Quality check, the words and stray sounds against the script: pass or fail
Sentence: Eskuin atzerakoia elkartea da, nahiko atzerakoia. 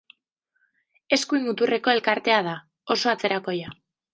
fail